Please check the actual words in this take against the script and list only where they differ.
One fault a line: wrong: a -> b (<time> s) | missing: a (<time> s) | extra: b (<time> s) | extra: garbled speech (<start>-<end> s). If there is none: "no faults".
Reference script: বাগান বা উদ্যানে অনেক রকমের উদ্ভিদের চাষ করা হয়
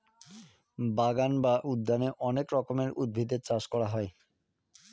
no faults